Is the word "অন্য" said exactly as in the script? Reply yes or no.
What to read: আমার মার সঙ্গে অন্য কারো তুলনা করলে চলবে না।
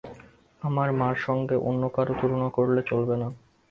yes